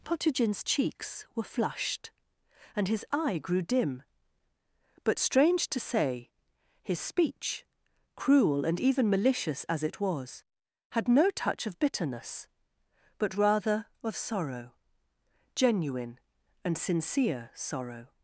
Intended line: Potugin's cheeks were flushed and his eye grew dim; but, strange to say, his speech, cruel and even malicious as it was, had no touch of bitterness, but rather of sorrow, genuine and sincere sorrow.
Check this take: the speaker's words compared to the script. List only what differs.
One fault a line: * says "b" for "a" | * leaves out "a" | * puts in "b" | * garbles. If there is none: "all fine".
all fine